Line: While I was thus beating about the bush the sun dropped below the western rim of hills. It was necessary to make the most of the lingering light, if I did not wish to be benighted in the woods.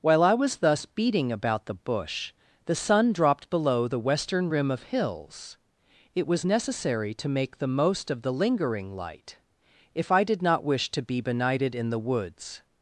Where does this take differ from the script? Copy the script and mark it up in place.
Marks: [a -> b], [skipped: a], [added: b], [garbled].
While I was thus beating about the bush the sun dropped below the western rim of hills. It was necessary to make the most of the lingering light, if I did not wish to be benighted in the woods.